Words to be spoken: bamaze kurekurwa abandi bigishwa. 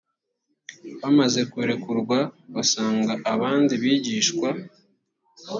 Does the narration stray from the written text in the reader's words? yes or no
yes